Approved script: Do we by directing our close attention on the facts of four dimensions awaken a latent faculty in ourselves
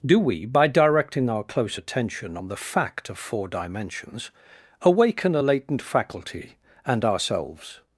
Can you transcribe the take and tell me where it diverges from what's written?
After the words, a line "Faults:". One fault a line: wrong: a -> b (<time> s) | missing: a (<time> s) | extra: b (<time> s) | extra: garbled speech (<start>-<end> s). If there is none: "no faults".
Do we by directing our close attention on the fact of four dimensions awaken a latent faculty and ourselves
Faults:
wrong: facts -> fact (2.6 s)
wrong: in -> and (6.8 s)